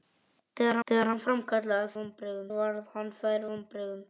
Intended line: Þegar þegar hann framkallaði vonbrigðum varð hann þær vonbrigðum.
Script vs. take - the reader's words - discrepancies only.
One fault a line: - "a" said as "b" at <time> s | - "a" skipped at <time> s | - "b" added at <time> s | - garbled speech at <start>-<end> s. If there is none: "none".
none